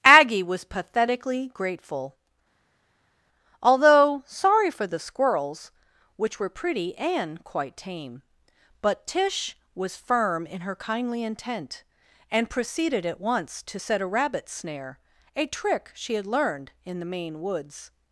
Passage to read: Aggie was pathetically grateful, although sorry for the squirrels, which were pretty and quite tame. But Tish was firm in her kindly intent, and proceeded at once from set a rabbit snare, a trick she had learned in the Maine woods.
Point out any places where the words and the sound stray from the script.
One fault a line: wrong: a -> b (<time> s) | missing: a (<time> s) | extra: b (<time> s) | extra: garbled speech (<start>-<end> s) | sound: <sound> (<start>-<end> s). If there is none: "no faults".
wrong: from -> to (13.6 s)